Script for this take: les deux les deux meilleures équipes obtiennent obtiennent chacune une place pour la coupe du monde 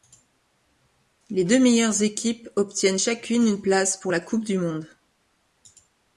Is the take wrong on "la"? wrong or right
right